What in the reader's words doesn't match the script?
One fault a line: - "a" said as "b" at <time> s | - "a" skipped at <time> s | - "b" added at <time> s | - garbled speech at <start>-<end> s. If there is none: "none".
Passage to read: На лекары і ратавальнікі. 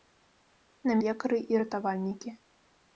none